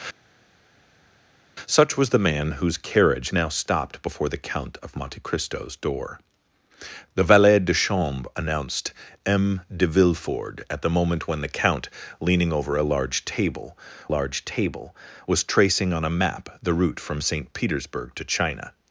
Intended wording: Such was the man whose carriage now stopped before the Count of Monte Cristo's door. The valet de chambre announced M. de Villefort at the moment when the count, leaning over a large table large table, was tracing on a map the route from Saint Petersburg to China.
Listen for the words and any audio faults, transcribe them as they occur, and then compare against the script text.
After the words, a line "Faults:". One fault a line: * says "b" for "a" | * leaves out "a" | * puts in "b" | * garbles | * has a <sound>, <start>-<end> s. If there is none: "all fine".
Such was the man whose carriage now stopped before the Count of Monte Cristo's door. The valet de chambre announced M. de Villefort at the moment when the count, leaning over a large table large table, was tracing on a map the route from Saint Petersburg to China.
Faults:
all fine